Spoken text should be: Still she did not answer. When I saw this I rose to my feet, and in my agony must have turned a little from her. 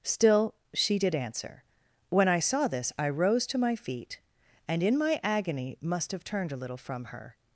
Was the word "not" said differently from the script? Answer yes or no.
yes